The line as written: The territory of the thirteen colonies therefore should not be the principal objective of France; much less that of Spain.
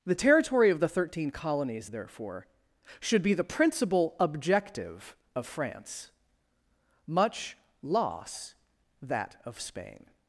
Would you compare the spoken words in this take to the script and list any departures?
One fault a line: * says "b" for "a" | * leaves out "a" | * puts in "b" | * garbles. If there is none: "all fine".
* leaves out "not"
* says "loss" for "less"